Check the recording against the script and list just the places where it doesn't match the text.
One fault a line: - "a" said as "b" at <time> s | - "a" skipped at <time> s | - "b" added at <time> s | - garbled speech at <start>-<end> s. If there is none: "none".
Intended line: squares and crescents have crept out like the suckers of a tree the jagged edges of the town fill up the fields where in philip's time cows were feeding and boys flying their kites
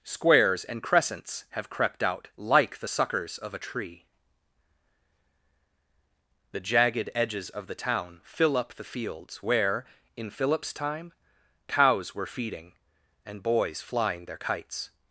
none